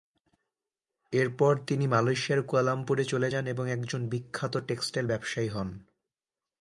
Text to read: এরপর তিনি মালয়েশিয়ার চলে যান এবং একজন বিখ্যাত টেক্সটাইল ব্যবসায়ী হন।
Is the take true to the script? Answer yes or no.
no